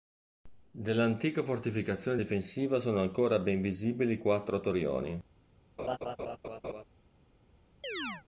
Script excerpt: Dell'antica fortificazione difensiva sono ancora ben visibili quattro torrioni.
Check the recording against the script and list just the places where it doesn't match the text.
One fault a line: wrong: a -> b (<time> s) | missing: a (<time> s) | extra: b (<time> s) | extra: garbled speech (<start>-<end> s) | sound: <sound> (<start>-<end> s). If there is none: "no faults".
sound: laugh (5.8-6.8 s)
sound: chirp (7.8-8.2 s)